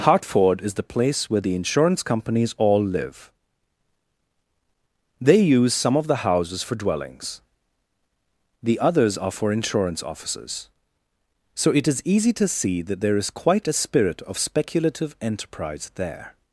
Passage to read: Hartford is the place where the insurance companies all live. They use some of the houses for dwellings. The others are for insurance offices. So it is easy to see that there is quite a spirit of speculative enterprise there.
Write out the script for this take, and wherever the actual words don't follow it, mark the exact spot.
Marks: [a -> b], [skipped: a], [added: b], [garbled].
Hartford is the place where the insurance companies all live. They use some of the houses for dwellings. The others are for insurance offices. So it is easy to see that there is quite a spirit of speculative enterprise there.